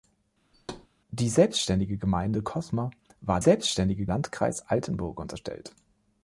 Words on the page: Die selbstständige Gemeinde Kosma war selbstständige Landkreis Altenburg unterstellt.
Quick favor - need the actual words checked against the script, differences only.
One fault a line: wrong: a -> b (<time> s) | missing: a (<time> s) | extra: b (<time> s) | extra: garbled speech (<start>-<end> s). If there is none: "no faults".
no faults